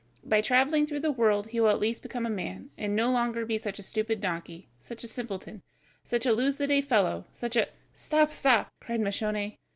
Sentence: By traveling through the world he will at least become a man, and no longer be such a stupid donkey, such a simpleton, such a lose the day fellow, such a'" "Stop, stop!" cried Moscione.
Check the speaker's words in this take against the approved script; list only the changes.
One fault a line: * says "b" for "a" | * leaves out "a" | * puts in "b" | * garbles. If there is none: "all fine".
all fine